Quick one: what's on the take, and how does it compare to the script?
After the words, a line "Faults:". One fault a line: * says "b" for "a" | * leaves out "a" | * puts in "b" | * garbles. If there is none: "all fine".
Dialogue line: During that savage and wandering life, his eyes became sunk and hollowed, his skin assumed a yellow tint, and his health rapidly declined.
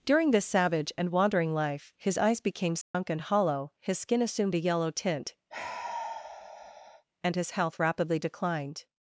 During this savage and wandering life, his eyes became sunk and hollow, his skin assumed a yellow tint, and his health rapidly declined.
Faults:
* says "this" for "that"
* says "hollow" for "hollowed"